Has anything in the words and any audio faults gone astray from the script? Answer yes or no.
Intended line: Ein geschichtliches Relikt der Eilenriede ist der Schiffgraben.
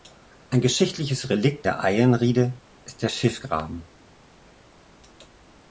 no